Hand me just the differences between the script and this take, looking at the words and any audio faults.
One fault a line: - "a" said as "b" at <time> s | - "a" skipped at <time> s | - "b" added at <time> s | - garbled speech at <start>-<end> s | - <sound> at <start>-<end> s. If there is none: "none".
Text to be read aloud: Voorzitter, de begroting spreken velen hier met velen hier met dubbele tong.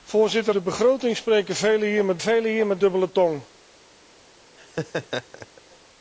- laugh at 4.6-5.6 s